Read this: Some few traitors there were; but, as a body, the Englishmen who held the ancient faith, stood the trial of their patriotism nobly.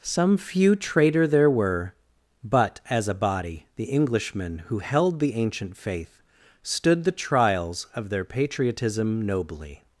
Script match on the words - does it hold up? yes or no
no